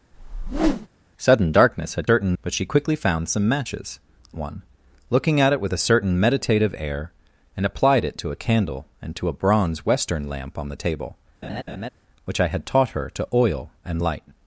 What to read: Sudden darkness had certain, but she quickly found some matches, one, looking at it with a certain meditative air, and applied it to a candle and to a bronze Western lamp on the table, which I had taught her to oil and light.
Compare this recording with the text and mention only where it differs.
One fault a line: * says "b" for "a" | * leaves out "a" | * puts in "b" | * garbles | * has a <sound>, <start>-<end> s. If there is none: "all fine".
* has a whoosh, 0.1-0.9 s
* has a laugh, 11.4-11.9 s